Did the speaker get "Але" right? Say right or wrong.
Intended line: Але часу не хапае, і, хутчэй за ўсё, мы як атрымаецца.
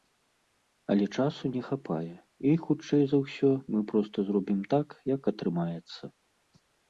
right